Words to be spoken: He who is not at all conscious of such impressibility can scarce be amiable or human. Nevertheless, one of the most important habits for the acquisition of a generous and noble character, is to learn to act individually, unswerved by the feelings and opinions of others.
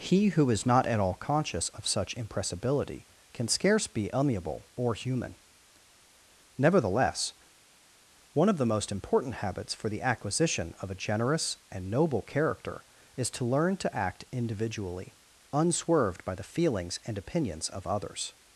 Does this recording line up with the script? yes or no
yes